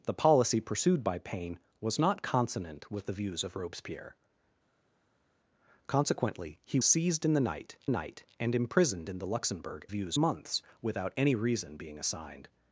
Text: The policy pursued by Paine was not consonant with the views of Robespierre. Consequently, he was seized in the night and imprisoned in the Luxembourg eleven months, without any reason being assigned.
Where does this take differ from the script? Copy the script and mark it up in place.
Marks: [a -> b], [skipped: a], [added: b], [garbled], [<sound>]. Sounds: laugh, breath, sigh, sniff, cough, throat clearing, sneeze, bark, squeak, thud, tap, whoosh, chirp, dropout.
The policy pursued by Paine was not consonant with the views of Robespierre. Consequently, he [skipped: was] seized in the night [added: night] and imprisoned in the Luxembourg [eleven -> views] months, without any reason being assigned.